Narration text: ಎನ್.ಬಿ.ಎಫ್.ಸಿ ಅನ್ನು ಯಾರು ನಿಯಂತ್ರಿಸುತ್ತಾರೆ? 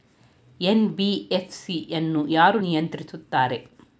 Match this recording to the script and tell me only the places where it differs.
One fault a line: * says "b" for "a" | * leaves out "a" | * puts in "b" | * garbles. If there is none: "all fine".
all fine